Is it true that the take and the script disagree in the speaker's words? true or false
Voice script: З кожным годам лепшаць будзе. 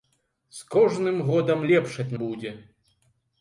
false